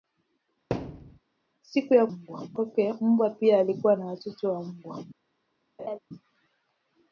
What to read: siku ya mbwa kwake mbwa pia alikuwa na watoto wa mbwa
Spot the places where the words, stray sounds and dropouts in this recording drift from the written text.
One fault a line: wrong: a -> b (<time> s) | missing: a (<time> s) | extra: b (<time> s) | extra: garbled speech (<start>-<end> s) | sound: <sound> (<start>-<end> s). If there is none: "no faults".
sound: thud (0.7-1.2 s)
sound: laugh (5.8-6.0 s)